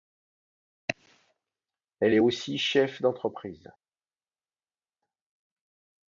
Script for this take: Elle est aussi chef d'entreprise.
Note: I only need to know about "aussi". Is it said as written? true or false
true